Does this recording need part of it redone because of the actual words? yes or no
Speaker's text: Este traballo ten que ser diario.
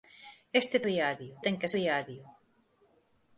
yes